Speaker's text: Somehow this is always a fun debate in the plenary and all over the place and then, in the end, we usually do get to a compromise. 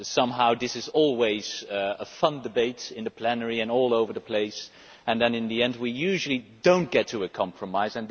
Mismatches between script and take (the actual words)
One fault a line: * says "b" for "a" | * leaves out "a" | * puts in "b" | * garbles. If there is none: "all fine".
* puts in "not"